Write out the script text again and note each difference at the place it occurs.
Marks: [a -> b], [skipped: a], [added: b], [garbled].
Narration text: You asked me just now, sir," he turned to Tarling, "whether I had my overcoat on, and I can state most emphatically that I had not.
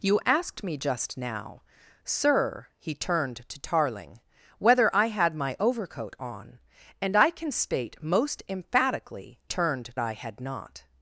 You asked me just now, sir," he turned to Tarling, "whether I had my overcoat on, and I can state most emphatically [that -> turned] I had not.